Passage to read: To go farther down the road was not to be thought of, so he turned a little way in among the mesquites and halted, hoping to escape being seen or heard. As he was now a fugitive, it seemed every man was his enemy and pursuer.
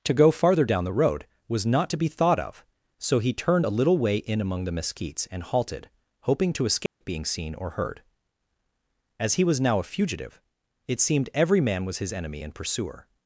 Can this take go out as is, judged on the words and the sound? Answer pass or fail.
fail